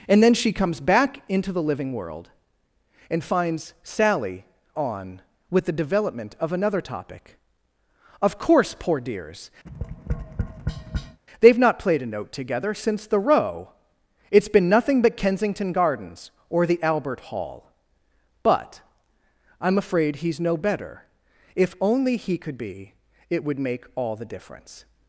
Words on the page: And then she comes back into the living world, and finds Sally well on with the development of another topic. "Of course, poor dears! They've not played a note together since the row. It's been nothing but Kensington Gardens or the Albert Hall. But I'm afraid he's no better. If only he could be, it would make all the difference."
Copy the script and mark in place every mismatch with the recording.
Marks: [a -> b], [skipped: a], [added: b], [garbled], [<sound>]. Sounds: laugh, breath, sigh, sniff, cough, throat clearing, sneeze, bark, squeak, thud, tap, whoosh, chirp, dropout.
And then she comes back into the living world, and finds Sally [skipped: well] on with the development of another topic. "Of course, poor dears! [tap] They've not played a note together since the row. It's been nothing but Kensington Gardens or the Albert Hall. But I'm afraid he's no better. If only he could be, it would make all the difference."